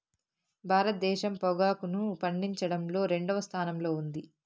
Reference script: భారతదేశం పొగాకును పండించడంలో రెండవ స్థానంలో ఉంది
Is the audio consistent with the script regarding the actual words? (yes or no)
yes